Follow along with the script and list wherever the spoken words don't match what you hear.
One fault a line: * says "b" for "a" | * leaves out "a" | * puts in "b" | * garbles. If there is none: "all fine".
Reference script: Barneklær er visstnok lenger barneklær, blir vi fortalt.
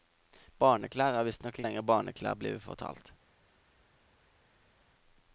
all fine